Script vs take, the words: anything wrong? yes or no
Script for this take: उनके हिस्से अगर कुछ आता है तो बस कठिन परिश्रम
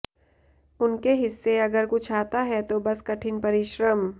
no